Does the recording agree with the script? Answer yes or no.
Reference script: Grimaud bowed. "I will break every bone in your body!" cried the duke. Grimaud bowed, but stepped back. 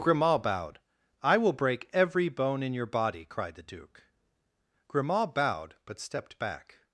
yes